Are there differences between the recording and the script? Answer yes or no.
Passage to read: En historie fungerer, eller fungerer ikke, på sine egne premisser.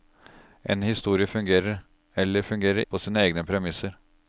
yes